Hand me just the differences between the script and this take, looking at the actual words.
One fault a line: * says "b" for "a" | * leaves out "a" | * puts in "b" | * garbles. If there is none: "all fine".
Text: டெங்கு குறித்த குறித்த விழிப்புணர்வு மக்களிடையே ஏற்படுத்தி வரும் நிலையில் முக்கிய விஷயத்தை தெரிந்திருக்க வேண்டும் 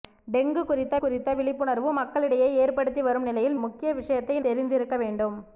all fine